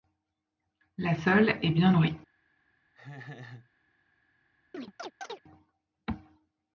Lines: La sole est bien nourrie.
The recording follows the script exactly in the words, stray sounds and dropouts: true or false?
false